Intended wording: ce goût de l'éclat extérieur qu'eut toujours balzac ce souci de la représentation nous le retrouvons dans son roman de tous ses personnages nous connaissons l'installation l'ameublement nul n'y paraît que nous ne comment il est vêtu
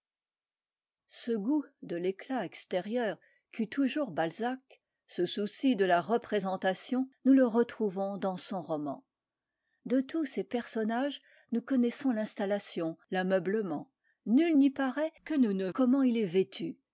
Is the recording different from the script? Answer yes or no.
no